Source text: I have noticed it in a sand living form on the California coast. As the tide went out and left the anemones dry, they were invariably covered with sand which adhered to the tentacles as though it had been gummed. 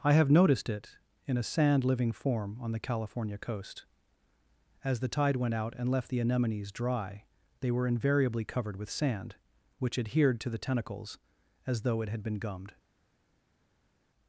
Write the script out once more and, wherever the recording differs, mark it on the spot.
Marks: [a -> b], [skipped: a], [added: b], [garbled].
I have noticed it in a sand living form on the California coast. As the tide went out and left the anemones dry, they were invariably covered with sand which adhered to the tentacles as though it had been gummed.